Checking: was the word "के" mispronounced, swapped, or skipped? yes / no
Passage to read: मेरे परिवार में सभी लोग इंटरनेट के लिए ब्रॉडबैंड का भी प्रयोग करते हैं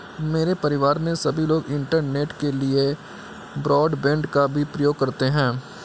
no